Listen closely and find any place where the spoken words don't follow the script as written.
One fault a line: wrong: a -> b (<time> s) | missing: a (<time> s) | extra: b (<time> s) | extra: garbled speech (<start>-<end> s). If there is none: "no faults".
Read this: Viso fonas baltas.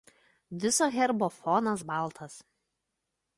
extra: herbo (0.9 s)